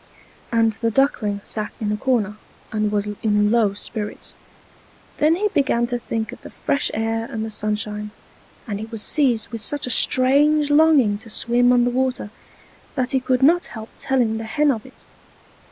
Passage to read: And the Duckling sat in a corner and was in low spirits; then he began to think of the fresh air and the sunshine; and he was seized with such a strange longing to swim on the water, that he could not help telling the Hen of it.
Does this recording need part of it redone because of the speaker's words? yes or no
no